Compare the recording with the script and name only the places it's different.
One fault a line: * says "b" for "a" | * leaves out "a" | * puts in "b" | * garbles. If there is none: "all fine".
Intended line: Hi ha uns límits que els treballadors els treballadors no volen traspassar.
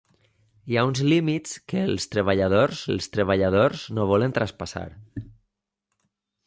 all fine